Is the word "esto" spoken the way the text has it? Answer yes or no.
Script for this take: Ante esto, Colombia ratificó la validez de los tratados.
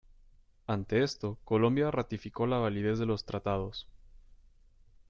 yes